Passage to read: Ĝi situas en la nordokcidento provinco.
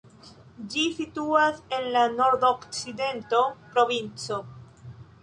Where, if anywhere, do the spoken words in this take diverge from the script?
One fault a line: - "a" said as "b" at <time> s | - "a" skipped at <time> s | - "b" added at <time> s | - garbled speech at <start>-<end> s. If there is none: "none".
none